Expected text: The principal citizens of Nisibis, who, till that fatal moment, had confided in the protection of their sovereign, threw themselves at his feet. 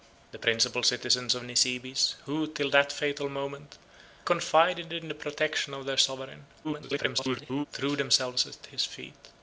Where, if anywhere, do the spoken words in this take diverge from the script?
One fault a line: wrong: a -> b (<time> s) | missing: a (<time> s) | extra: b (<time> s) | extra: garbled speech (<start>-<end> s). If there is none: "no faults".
missing: had (3.8 s)
extra: garbled speech (6.6-7.7 s)